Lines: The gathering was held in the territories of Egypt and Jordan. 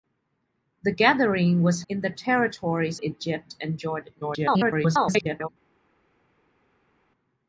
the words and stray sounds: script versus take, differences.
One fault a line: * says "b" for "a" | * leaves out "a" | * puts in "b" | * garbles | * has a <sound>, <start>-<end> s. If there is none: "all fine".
* leaves out "held"
* leaves out "of"
* garbles